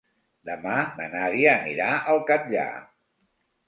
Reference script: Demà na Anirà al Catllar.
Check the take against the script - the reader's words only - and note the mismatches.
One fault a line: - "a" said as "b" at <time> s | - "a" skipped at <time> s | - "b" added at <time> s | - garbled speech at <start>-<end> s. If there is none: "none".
- "Nàdia" added at 1.2 s